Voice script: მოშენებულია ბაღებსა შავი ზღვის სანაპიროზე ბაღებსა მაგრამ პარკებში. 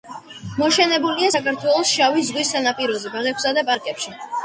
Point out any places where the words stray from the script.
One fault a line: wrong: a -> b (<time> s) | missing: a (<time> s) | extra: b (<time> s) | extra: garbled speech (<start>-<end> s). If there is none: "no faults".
wrong: ბაღებსა -> საქართველოს (1.3 s)
wrong: მაგრამ -> და (3.6 s)